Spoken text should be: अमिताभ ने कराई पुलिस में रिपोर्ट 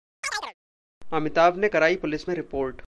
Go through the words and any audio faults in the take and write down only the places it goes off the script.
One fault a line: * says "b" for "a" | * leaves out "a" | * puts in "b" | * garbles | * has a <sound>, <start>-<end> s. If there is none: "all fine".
* has a chirp, 0.2-0.5 s